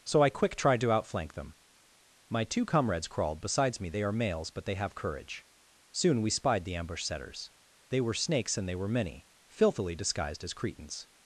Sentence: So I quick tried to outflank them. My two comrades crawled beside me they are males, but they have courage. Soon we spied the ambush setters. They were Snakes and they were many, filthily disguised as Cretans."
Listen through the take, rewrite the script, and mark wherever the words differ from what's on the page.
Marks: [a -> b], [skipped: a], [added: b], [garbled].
So I quick tried to outflank them. My two comrades crawled [beside -> besides] me they are males, but they have courage. Soon we spied the ambush setters. They were Snakes and they were many, filthily disguised as Cretans."